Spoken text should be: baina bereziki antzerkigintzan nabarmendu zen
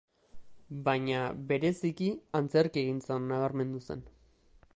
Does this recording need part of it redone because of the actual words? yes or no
no